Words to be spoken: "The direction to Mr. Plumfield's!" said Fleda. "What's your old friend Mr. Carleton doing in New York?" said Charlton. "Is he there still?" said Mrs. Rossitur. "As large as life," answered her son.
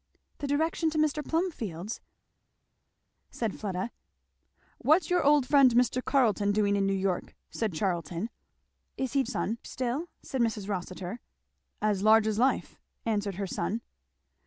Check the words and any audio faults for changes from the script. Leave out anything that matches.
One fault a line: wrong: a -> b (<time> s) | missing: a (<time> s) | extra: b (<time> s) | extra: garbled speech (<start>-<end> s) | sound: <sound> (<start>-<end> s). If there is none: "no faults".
wrong: there -> son (9.2 s)